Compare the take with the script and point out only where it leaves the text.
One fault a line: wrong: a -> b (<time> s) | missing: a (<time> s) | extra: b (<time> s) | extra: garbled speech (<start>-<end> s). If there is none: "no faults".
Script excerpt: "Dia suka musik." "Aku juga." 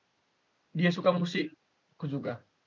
no faults